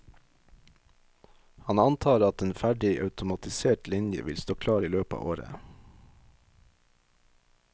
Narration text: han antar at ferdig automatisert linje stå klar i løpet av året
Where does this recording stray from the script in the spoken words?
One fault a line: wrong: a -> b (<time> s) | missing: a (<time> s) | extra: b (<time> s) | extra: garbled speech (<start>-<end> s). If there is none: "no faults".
extra: en (2.4 s)
extra: vil (4.2 s)